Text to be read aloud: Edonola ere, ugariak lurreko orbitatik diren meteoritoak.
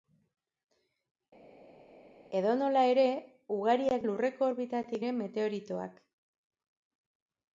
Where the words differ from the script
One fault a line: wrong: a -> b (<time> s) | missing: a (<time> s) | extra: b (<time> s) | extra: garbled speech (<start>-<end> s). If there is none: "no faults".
no faults